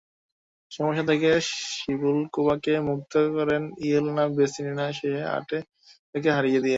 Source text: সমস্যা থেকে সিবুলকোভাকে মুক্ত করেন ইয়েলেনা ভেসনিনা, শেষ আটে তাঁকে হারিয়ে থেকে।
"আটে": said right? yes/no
yes